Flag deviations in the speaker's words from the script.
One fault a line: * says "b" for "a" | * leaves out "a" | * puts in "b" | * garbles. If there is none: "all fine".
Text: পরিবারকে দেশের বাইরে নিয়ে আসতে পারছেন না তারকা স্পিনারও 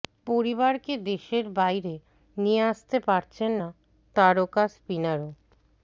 all fine